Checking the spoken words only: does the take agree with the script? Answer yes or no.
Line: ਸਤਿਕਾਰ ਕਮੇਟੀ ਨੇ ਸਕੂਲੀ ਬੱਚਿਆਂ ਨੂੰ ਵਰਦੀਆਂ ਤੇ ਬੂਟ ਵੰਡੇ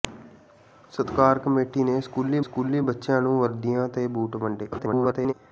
no